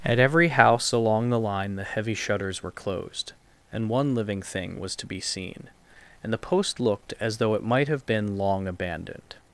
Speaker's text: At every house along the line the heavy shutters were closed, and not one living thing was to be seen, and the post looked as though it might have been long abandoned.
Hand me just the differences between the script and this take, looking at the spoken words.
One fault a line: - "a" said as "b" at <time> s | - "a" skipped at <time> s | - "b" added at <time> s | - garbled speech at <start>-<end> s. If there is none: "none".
- "not" skipped at 3.9 s